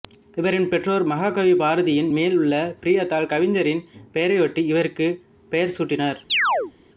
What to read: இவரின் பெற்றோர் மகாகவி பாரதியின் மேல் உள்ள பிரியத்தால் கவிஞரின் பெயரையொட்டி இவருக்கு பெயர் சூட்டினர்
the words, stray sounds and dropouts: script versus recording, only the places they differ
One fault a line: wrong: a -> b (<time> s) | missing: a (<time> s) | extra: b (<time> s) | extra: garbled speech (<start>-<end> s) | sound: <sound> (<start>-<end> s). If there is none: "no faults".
sound: chirp (6.3-6.7 s)